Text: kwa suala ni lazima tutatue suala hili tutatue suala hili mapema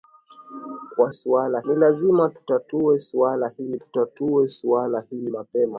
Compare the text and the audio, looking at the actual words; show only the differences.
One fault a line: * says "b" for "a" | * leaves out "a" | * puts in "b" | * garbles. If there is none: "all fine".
all fine